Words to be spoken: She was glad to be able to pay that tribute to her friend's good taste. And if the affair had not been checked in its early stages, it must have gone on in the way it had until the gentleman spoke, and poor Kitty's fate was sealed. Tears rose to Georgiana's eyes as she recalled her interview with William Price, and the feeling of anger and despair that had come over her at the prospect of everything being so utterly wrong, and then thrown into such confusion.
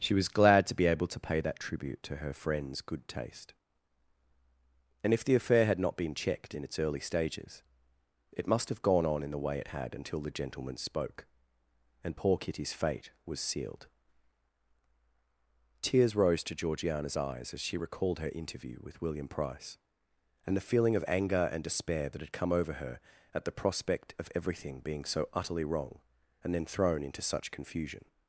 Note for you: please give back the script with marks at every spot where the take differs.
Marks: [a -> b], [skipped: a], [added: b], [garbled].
She was glad to be able to pay that tribute to her friend's good taste. And if the affair had not been checked in its early stages, it must have gone on in the way it had until the gentleman spoke, and poor Kitty's fate was sealed. Tears rose to Georgiana's eyes as she recalled her interview with William Price, and the feeling of anger and despair that had come over her at the prospect of everything being so utterly wrong, and then thrown into such confusion.